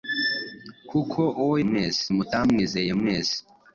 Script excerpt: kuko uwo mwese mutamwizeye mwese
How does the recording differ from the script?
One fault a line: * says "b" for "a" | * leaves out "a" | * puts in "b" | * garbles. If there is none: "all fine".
all fine